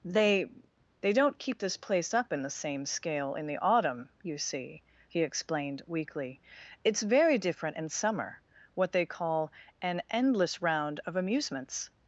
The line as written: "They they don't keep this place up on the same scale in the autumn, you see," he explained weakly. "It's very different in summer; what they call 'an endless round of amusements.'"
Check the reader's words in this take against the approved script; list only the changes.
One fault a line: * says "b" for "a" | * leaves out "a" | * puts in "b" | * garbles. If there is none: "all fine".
* says "in" for "on"